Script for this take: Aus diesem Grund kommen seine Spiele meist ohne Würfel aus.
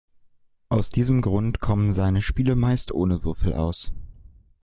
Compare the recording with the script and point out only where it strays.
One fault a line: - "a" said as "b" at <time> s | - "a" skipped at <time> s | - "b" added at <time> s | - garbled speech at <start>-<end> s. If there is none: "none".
none